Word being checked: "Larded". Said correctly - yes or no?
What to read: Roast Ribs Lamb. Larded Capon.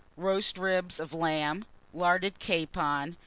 yes